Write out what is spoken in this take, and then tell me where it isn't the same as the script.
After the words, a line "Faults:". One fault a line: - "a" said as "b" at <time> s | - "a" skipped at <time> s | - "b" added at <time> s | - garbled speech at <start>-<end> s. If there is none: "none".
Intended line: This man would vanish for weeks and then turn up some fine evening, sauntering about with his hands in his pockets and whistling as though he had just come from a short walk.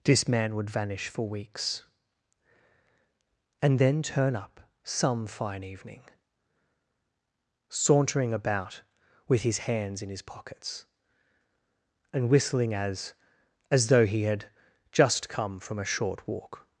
This man would vanish for weeks and then turn up some fine evening, sauntering about with his hands in his pockets and whistling as as though he had just come from a short walk.
Faults:
- "as" added at 13.7 s